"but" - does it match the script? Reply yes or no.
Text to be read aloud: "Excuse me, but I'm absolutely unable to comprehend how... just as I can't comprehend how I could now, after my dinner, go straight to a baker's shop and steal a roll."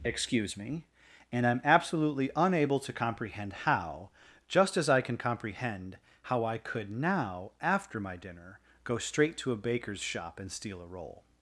no